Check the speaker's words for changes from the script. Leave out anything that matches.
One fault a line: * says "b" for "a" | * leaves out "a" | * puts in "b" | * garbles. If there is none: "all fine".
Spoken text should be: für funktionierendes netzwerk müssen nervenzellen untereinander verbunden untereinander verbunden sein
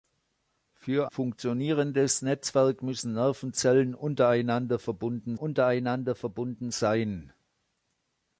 all fine